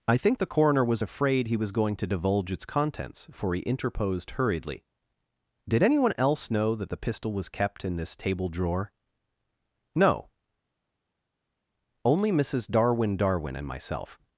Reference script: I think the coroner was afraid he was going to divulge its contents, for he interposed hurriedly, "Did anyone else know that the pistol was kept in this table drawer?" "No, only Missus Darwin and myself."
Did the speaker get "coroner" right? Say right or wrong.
right